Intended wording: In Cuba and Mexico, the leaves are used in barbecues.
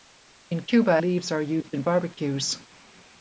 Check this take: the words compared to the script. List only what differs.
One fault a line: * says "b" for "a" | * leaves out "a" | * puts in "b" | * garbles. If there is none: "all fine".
* leaves out "and Mexico the"